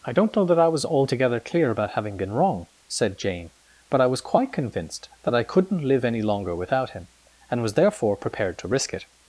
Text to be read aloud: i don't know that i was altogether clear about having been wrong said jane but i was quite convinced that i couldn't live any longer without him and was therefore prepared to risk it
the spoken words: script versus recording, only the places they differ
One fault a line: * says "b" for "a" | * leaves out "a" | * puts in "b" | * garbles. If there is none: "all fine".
all fine